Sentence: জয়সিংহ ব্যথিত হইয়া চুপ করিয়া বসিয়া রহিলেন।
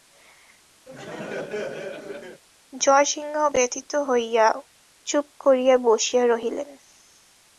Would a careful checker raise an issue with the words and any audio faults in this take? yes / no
yes